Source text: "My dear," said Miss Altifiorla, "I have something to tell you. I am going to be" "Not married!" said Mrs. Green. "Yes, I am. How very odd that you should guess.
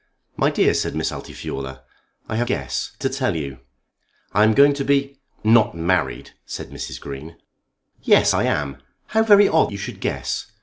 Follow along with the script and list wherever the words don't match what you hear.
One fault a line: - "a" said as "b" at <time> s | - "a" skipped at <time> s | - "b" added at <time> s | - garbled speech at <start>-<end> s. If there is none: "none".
- "something" said as "guess" at 2.5 s
- "that" skipped at 9.7 s